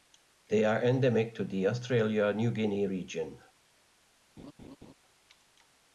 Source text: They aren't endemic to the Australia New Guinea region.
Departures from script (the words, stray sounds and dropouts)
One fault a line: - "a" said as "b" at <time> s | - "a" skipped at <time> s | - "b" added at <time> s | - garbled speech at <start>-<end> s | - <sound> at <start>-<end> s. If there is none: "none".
- "aren't" said as "are" at 0.7 s
- laugh at 4.4-4.9 s